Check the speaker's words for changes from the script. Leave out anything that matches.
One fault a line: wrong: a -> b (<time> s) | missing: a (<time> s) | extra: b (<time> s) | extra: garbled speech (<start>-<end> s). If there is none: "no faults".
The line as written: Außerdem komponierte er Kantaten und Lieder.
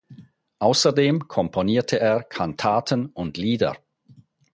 no faults